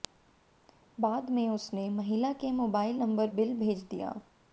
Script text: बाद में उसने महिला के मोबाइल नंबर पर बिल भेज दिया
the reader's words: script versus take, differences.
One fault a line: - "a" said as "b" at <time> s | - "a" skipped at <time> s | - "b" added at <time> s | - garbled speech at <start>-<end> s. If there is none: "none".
- "पर" skipped at 3.3 s